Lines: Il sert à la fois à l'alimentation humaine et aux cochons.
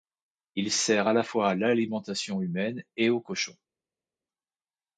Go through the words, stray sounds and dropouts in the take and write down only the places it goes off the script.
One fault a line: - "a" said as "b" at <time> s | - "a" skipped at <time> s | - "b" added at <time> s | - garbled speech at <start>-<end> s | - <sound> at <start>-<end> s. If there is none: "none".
none